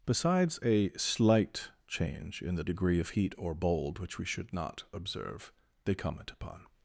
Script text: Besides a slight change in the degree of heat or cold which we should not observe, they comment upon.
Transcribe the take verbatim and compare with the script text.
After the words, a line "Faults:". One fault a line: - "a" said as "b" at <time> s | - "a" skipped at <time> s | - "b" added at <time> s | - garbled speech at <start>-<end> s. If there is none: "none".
Besides a slight change in the degree of heat or bold which we should not observe, they comment upon.
Faults:
- "cold" said as "bold" at 3.5 s